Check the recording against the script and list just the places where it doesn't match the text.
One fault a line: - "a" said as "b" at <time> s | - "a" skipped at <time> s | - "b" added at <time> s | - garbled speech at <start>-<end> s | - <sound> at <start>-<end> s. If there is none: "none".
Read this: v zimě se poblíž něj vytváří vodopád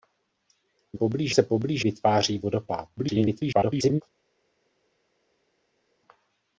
- "zimě" said as "poblíž" at 0.9 s
- "něj" skipped at 1.8 s
- garbled speech at 3.0-4.0 s